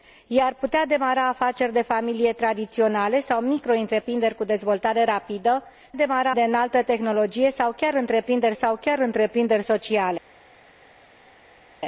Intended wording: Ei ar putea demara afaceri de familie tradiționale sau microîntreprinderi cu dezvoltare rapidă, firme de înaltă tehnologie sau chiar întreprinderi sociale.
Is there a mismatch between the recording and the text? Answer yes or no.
yes